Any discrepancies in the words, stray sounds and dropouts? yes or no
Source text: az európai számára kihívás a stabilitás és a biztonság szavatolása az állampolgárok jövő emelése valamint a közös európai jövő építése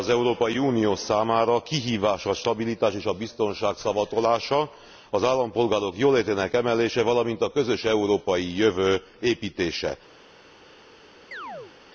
yes